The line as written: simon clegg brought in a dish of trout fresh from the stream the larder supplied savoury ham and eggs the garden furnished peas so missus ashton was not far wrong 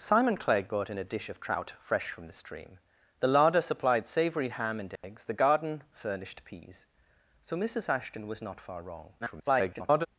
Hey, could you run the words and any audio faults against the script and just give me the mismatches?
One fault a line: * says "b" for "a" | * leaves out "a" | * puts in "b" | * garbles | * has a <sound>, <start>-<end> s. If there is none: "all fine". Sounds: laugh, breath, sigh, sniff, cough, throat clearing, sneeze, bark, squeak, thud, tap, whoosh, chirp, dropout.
* has a dropout, 5.0-5.0 s
* garbles